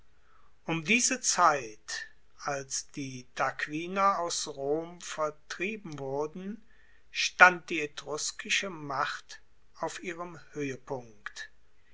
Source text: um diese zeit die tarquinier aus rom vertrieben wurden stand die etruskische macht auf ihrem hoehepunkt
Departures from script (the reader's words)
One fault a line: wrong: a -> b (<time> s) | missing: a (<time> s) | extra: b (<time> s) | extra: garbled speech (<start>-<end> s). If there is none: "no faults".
extra: als (2.4 s)